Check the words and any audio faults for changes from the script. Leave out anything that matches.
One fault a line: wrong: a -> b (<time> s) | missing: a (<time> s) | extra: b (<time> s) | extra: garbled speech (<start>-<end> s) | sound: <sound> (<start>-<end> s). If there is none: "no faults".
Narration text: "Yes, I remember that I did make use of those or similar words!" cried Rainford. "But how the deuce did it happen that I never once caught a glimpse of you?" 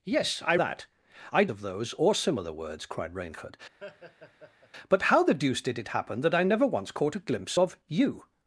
missing: remember (0.6 s)
missing: did make use (1.5 s)
sound: laugh (3.8-4.7 s)